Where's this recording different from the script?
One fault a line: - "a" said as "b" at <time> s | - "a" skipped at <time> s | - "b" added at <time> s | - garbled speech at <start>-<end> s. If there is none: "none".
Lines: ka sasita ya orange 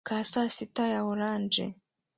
none